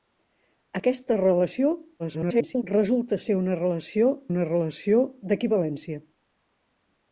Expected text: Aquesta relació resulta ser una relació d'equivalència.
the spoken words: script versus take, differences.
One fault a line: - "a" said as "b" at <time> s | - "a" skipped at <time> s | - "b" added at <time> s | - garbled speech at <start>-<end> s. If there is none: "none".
- garbled speech at 2.0-2.6 s
- "una relació" added at 4.3 s